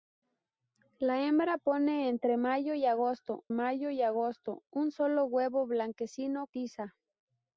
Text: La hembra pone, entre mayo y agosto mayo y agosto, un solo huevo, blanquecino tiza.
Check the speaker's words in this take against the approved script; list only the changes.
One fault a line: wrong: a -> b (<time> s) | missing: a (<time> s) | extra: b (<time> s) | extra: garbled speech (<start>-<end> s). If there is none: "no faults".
no faults